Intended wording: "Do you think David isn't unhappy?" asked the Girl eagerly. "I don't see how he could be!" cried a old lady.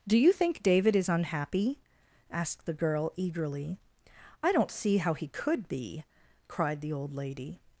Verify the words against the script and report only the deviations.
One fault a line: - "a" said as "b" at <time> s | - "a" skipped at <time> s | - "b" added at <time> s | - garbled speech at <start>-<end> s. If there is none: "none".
- "isn't" said as "is" at 0.9 s
- "a" said as "the" at 6.8 s